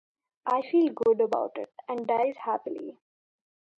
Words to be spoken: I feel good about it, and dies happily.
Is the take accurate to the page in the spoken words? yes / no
yes